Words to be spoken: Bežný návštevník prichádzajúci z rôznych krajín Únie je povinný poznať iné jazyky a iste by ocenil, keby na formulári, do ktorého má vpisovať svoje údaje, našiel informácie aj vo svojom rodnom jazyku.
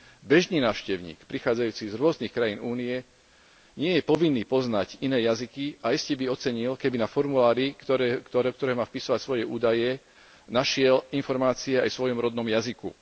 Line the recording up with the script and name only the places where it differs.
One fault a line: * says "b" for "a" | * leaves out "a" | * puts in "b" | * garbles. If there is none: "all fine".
* puts in "nie"